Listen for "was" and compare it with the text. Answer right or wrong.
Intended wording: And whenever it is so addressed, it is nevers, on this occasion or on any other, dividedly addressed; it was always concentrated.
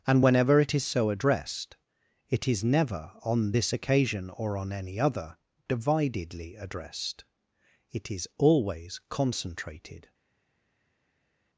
wrong